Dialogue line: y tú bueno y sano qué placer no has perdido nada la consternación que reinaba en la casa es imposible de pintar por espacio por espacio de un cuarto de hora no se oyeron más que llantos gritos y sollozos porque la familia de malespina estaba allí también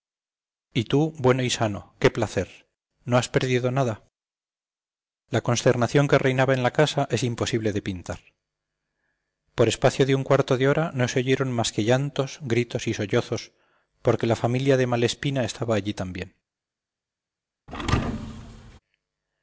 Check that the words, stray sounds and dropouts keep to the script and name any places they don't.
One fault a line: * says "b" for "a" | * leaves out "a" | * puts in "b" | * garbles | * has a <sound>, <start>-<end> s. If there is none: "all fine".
* leaves out "por espacio"
* has a thud, 17.7-18.8 s